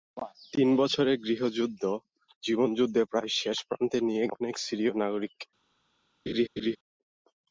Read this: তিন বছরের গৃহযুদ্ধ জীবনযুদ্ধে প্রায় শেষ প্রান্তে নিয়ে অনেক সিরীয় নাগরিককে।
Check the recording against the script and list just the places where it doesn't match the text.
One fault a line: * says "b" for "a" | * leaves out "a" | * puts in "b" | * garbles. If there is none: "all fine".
all fine